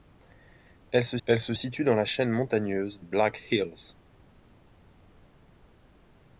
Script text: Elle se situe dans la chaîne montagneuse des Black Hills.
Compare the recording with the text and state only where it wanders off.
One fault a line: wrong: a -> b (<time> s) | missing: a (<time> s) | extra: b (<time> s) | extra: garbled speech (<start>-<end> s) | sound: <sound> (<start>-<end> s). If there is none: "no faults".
extra: elle se (1.2 s)
missing: des (3.0 s)